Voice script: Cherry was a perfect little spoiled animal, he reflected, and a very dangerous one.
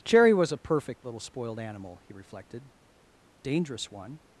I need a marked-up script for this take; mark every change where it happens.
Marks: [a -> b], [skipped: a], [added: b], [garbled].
Cherry was a perfect little spoiled animal, he reflected, [skipped: and a very] dangerous one.